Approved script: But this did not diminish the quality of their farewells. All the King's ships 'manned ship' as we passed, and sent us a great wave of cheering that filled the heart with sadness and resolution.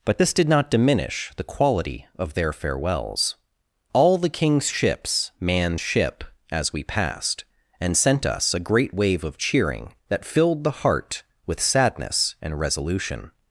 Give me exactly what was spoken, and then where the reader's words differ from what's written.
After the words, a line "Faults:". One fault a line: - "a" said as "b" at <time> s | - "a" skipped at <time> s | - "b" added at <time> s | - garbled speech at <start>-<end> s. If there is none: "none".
But this did not diminish the quality of their farewells. All the King's ships 'manned ship' as we passed, and sent us a great wave of cheering that filled the heart with sadness and resolution.
Faults:
none